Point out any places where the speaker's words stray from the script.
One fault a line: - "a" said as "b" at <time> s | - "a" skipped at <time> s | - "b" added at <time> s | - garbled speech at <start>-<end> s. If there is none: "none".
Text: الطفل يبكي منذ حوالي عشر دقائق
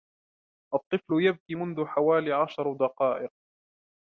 none